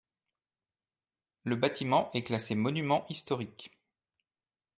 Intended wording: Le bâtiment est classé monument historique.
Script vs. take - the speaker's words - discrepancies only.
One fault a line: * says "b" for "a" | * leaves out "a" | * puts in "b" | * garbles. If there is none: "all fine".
all fine